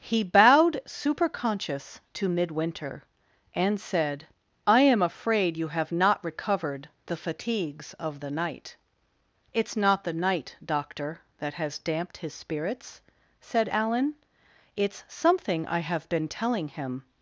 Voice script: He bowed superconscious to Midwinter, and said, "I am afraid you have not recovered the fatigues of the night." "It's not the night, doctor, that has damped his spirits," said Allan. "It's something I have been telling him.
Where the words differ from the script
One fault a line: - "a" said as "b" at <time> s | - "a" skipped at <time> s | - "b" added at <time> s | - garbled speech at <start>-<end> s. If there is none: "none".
none